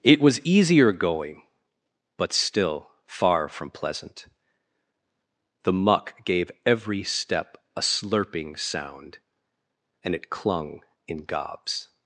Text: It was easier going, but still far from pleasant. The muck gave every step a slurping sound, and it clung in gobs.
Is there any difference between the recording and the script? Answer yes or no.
no